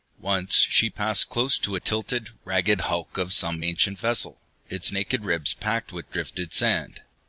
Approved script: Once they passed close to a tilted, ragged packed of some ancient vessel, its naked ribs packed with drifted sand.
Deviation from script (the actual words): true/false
true